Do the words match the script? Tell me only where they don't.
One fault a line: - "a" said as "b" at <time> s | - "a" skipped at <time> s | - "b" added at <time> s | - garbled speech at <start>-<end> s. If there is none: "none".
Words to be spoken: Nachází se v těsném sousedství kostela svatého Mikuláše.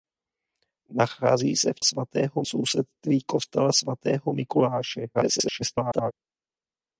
- "těsném" said as "svatého" at 1.8 s
- garbled speech at 5.1-6.1 s